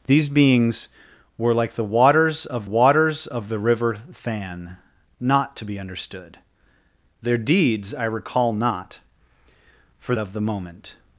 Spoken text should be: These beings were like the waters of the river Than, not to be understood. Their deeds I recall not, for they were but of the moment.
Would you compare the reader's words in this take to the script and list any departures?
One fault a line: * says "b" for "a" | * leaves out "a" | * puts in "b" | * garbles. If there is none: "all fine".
* puts in "waters of"
* leaves out "they were but"